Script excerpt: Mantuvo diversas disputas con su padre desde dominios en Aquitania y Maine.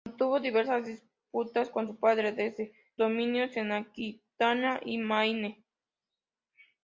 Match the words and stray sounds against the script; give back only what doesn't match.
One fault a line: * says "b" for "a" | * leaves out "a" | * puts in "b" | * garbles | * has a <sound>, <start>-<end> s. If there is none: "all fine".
all fine